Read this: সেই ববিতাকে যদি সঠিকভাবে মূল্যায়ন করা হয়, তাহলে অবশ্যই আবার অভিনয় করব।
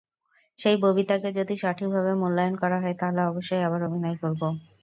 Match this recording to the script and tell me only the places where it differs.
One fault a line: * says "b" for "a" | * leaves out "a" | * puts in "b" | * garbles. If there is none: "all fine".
all fine